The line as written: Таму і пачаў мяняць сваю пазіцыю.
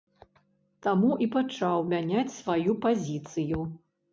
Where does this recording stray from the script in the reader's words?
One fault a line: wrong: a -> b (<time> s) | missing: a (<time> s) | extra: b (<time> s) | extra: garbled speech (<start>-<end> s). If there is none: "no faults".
no faults